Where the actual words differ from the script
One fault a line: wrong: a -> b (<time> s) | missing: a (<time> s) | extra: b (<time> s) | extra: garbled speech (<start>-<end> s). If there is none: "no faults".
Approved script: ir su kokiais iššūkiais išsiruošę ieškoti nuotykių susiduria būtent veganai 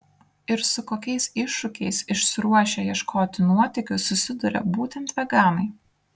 no faults